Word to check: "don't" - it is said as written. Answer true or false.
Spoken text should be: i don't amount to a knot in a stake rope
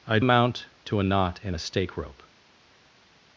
false